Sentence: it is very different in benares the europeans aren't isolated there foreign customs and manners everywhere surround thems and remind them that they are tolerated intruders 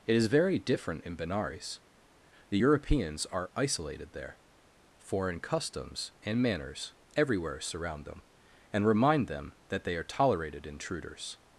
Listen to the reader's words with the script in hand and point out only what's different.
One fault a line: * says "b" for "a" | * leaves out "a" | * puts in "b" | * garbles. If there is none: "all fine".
* says "are" for "aren't"
* says "them" for "thems"